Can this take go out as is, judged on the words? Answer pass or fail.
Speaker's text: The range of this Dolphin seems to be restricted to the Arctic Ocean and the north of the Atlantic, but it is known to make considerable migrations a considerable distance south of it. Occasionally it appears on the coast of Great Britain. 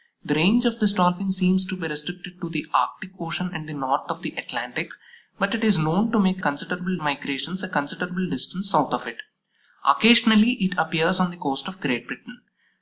pass